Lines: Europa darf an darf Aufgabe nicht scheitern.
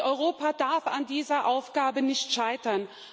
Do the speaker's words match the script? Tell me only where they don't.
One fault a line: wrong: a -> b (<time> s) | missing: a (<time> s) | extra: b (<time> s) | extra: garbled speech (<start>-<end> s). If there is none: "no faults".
wrong: darf -> dieser (1.1 s)